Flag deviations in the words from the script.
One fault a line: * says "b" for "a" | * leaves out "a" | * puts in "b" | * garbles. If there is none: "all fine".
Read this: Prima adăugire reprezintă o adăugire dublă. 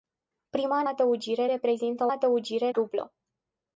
all fine